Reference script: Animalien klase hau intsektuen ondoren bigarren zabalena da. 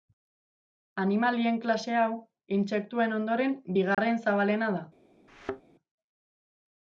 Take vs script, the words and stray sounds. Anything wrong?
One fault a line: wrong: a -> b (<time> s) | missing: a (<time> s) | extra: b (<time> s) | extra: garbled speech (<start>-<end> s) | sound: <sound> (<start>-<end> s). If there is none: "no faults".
sound: dropout (3.9-4.0 s)
sound: thud (5.3-5.6 s)